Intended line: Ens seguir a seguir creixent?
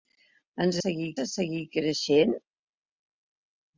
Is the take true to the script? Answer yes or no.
yes